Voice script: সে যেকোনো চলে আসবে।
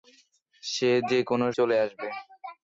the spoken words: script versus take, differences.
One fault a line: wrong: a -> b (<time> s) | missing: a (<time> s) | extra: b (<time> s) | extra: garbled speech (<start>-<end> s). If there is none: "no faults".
no faults